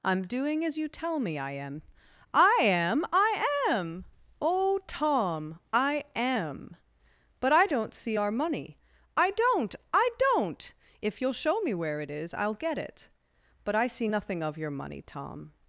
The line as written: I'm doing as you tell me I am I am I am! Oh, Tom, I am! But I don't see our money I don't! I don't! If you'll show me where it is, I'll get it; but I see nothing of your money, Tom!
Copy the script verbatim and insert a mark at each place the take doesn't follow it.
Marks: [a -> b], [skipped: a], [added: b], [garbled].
I'm doing as you tell me I am I am I am! Oh, Tom, I am! But I don't see our money I don't! I don't! If you'll show me where it is, I'll get it; but I see nothing of your money, Tom!